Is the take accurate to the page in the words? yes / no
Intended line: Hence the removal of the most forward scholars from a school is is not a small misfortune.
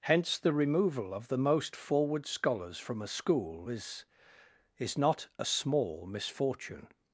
yes